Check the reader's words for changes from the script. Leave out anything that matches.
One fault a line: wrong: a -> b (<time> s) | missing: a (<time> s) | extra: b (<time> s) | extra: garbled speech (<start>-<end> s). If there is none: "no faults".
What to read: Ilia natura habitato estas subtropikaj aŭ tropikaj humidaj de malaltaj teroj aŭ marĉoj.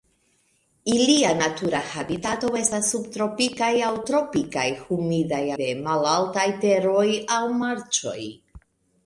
no faults